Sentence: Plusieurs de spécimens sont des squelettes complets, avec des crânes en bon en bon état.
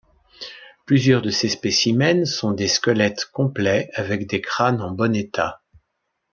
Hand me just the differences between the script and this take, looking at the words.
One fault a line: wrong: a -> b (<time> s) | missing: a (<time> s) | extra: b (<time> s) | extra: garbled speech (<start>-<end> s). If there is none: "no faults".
extra: ces (1.3 s)
missing: en bon (5.1 s)